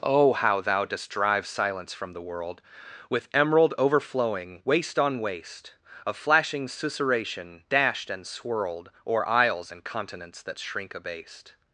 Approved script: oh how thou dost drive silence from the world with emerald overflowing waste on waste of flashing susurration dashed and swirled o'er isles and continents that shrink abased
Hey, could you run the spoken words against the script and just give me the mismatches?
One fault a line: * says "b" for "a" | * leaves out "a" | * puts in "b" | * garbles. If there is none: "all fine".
all fine